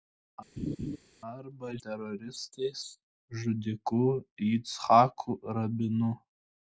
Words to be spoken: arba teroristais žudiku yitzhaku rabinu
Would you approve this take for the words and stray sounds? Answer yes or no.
no